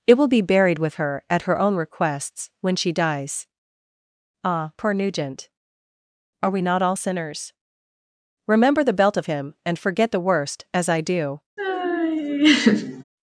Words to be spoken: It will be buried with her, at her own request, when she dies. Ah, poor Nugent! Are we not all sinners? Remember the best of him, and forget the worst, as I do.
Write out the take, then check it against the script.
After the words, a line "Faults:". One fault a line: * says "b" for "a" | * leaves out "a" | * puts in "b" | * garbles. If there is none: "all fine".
It will be buried with her, at her own requests, when she dies. Ah, poor Nugent! Are we not all sinners? Remember the belt of him, and forget the worst, as I do.
Faults:
* says "requests" for "request"
* says "belt" for "best"